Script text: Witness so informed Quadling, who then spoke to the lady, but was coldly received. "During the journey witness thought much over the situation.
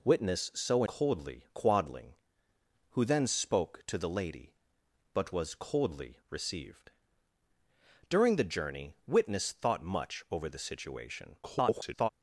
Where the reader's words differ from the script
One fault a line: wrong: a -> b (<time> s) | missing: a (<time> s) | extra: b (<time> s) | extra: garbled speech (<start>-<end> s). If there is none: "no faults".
wrong: informed -> coldly (0.8 s)
extra: garbled speech (11.4-12.1 s)